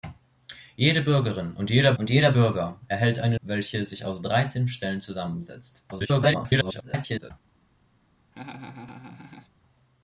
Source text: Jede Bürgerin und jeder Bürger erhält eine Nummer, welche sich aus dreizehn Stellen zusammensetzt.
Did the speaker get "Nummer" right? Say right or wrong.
wrong